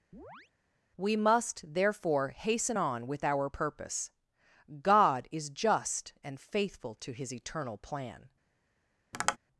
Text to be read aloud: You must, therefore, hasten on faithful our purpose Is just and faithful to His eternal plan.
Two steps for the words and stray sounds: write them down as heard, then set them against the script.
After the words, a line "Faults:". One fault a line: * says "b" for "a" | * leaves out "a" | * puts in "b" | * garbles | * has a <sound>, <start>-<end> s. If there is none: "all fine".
We must, therefore, hasten on with our purpose God is just and faithful to His eternal plan.
Faults:
* has a chirp, 0.1-0.5 s
* says "We" for "You"
* says "with" for "faithful"
* puts in "God"
* has a tap, 9.1-9.4 s